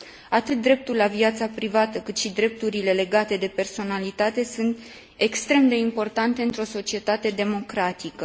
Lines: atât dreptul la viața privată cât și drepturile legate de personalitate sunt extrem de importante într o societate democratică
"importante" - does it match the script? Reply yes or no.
yes